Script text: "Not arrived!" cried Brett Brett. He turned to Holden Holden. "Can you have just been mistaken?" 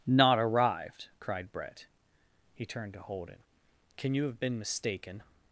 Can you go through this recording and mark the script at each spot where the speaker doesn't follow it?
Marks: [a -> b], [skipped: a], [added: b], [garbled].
"Not arrived!" cried Brett [skipped: Brett.] He turned to Holden [skipped: Holden.] "Can you have [skipped: just] been mistaken?"